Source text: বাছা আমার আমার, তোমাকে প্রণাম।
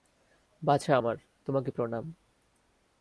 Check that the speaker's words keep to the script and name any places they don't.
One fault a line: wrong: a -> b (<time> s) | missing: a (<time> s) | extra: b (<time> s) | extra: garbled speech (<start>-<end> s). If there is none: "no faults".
missing: আমার (1.2 s)